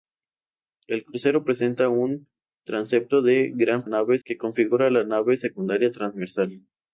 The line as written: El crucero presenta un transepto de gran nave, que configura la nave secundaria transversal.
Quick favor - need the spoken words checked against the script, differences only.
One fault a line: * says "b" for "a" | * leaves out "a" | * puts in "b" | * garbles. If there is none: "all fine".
all fine